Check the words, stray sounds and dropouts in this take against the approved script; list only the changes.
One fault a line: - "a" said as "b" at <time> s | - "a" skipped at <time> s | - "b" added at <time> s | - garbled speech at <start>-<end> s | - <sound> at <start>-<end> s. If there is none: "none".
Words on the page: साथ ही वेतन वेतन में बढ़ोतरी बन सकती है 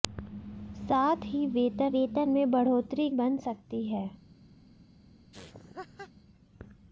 - laugh at 5.3-6.1 s